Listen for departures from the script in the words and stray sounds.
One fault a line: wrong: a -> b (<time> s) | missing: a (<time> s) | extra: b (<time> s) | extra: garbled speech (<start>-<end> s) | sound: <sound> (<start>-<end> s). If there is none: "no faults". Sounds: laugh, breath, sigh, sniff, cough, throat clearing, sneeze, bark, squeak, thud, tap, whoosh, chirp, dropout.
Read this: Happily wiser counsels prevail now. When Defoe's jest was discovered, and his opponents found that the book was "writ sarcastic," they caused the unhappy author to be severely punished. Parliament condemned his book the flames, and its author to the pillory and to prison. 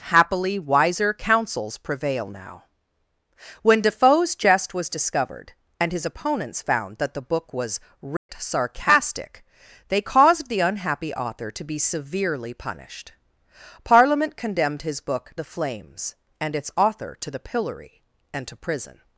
sound: dropout (8.2-8.3 s)